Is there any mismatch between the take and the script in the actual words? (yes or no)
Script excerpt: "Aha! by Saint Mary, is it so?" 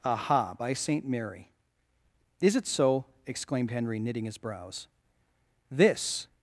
yes